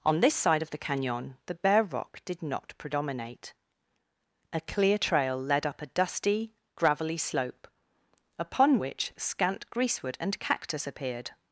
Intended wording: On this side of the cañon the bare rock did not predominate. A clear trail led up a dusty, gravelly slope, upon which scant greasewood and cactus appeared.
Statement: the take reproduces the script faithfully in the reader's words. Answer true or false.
true